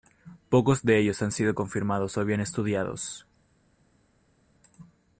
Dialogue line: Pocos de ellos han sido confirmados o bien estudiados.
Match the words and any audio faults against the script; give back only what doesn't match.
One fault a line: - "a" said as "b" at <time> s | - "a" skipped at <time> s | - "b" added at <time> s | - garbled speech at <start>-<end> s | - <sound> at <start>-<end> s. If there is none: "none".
none